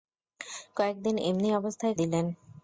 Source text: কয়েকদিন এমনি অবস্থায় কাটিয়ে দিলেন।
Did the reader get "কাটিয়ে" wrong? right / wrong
wrong